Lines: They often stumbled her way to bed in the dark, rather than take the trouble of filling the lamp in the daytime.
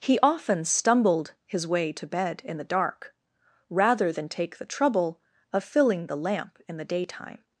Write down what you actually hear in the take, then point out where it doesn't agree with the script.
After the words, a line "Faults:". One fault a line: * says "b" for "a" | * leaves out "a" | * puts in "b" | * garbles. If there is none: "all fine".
He often stumbled his way to bed in the dark, rather than take the trouble of filling the lamp in the daytime.
Faults:
* says "He" for "They"
* says "his" for "her"